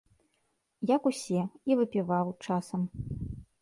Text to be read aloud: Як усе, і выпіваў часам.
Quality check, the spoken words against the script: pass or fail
pass